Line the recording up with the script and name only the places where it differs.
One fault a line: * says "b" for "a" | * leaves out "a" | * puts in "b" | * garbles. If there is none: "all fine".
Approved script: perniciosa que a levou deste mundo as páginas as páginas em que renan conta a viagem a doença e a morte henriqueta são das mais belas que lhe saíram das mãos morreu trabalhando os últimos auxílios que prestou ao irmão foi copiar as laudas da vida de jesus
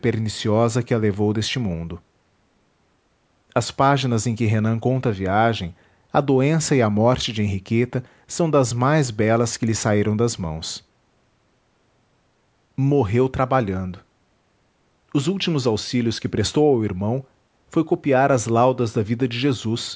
* leaves out "as páginas"
* puts in "de"